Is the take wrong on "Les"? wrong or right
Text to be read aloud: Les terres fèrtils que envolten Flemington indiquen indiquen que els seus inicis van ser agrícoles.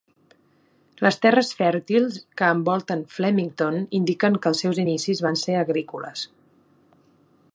right